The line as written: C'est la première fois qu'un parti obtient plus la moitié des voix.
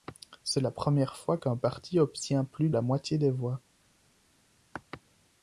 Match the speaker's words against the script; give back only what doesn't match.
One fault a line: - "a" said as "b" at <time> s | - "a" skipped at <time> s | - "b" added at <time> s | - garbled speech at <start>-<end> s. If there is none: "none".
none